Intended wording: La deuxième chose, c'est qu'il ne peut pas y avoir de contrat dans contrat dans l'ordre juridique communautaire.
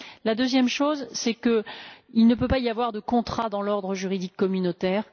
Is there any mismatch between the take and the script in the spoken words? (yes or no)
yes